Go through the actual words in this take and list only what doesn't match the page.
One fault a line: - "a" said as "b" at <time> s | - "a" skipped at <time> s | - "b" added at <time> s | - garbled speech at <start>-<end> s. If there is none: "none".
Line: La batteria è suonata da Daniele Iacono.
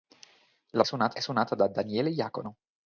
- "batteria" said as "suonata" at 0.8 s